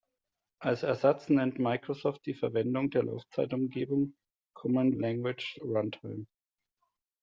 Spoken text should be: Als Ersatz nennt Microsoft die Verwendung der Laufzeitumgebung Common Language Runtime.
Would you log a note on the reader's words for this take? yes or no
no